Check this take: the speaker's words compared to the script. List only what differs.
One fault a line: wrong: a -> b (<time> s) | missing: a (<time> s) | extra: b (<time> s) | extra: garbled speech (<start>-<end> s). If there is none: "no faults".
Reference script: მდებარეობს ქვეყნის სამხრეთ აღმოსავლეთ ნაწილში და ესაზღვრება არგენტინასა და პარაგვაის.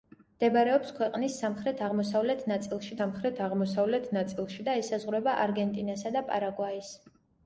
extra: სამხრეთ აღმოსავლეთ ნაწილში (3.0 s)